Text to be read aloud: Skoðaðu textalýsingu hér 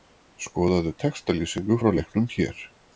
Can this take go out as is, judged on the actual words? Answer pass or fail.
fail